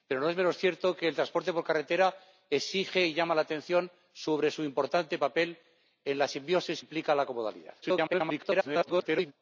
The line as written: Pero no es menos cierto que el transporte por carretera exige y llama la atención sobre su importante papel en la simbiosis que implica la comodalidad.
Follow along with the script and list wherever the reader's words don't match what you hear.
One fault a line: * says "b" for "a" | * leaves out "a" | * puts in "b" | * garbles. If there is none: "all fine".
* leaves out "que"
* garbles